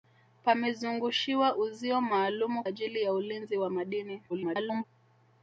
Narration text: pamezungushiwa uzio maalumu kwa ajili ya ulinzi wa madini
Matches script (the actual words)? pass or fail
fail